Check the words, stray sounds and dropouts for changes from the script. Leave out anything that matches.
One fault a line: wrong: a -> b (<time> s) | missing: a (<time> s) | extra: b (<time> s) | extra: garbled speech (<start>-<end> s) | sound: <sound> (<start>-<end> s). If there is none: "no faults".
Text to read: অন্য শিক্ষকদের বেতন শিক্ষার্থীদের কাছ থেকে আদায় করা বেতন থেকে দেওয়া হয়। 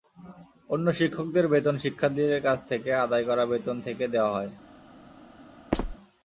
sound: squeak (5.7-6.0 s)